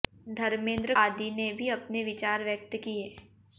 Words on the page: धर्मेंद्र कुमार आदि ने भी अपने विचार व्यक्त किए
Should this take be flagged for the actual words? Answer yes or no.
yes